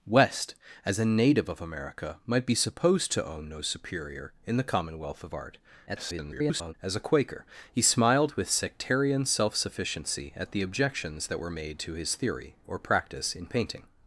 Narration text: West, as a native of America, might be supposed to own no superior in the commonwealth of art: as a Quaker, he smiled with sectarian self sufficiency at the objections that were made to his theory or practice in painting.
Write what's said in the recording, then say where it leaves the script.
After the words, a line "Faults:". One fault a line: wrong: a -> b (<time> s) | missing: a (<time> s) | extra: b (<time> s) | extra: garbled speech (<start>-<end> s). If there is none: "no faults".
West, as a native of America, might be supposed to own no superior in the commonwealth of art: [garbled] as a Quaker, he smiled with sectarian self sufficiency at the objections that were made to his theory or practice in painting.
Faults:
extra: garbled speech (5.9-6.7 s)